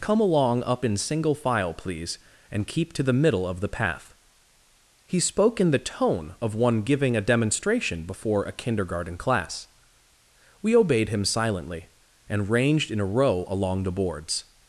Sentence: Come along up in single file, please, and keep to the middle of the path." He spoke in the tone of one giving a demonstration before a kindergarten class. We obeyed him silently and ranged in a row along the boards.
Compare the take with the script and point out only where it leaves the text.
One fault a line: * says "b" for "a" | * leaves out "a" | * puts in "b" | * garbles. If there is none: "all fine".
all fine